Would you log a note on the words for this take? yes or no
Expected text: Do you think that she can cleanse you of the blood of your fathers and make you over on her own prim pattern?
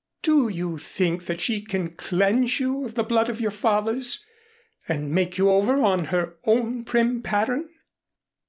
no